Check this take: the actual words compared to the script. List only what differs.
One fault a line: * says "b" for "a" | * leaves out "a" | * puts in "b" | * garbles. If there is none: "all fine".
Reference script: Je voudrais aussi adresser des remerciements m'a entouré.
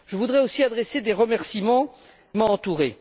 all fine